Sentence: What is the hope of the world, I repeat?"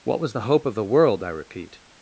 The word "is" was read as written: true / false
false